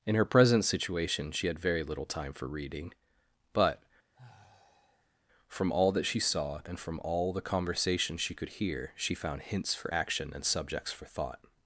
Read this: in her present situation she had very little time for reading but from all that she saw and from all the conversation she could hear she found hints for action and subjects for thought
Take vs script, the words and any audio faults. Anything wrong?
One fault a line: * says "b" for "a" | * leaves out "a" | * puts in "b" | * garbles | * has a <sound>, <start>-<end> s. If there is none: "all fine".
* has a sigh, 4.1-5.2 s